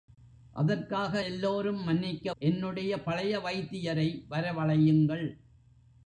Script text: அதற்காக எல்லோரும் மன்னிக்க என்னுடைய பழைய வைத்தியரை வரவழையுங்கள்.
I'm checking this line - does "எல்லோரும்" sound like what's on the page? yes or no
yes